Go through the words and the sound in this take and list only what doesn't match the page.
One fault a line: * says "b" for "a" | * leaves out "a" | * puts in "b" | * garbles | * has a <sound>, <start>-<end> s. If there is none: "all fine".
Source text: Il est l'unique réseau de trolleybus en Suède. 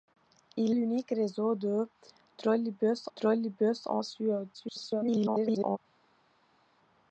* leaves out "est"
* puts in "trolleybus"
* garbles